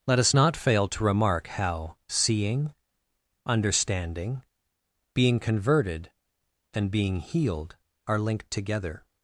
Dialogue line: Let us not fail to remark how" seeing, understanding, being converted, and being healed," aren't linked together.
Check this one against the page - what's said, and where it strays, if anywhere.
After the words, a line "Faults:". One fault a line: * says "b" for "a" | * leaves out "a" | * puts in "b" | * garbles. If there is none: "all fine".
Let us not fail to remark how" seeing, understanding, being converted, and being healed," are linked together.
Faults:
* says "are" for "aren't"